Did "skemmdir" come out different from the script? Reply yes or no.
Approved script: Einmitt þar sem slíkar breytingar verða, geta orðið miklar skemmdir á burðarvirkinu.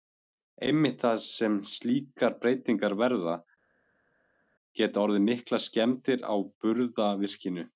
no